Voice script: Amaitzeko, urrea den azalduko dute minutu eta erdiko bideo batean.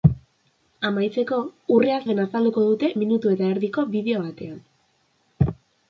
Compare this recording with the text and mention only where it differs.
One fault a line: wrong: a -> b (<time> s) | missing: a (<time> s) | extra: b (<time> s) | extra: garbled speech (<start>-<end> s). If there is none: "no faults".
no faults